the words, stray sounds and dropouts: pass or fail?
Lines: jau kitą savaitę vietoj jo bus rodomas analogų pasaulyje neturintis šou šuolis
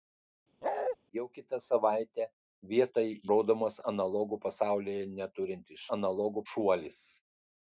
fail